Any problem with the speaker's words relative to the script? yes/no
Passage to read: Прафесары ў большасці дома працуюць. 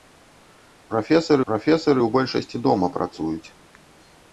yes